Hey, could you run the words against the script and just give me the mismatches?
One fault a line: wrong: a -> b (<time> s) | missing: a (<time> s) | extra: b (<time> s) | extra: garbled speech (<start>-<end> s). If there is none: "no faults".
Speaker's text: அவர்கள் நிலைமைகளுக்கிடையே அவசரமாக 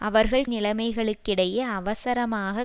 no faults